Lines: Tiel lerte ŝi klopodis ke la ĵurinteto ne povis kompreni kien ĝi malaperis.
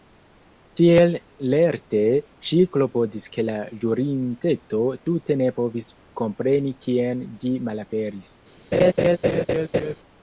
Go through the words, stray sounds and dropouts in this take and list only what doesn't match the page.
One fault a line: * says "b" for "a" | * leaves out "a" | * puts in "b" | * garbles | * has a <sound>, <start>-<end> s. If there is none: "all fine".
* puts in "tute"
* has a laugh, 8.7-9.9 s